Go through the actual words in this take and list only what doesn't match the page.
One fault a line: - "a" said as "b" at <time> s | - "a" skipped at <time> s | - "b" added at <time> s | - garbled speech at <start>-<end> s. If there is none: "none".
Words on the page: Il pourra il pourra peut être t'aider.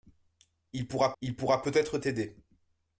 none